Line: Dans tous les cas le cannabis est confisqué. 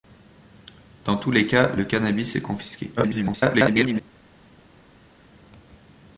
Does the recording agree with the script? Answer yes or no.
no